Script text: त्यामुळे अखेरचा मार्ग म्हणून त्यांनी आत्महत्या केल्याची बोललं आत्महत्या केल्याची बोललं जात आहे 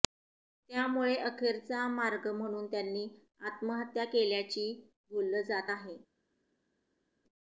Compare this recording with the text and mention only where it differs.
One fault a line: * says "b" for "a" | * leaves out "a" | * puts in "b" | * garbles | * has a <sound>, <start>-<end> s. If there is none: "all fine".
* leaves out "आत्महत्या केल्याची बोललं"